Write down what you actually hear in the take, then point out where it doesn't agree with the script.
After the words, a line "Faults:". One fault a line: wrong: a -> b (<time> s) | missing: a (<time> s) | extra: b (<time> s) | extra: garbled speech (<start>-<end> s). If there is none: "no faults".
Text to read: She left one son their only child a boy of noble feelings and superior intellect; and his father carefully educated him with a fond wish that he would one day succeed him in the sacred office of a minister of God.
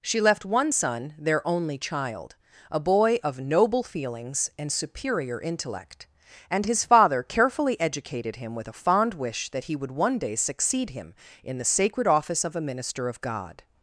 She left one son their only child a boy of noble feelings and superior intellect; and his father carefully educated him with a fond wish that he would one day succeed him in the sacred office of a minister of God.
Faults:
no faults